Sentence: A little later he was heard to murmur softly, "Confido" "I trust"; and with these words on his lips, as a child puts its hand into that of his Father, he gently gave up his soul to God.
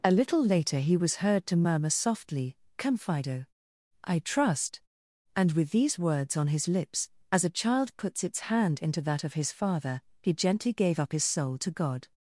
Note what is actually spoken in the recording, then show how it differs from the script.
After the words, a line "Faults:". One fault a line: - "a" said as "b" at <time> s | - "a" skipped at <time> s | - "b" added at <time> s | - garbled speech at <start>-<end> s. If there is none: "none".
A little later he was heard to murmur softly, "Confido" "I trust"; and with these words on his lips, as a child puts its hand into that of his Father, he gently gave up his soul to God.
Faults:
none